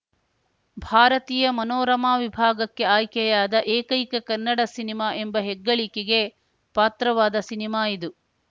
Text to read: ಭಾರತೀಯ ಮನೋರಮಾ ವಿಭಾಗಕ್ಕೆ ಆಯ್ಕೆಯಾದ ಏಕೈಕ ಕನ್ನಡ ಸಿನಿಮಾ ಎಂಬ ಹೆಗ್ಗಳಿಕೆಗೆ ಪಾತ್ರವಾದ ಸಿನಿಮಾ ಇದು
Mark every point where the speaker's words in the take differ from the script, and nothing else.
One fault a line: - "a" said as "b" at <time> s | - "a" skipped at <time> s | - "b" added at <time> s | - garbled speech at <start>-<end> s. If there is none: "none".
none